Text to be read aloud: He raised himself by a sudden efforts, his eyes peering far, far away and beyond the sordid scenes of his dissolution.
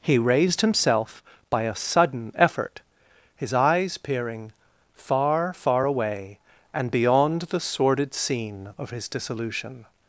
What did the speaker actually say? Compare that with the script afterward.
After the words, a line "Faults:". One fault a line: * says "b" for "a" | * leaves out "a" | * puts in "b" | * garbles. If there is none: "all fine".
He raised himself by a sudden effort, his eyes peering far, far away and beyond the sordid scene of his dissolution.
Faults:
* says "effort" for "efforts"
* says "scene" for "scenes"